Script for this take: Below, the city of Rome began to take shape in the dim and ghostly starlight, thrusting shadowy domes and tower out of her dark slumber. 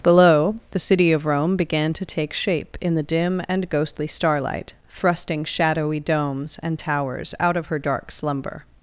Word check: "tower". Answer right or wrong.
wrong